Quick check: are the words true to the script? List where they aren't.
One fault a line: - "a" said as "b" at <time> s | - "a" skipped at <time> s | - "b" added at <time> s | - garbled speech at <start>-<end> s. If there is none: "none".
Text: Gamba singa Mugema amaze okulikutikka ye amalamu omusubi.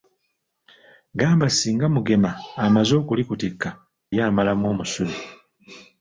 none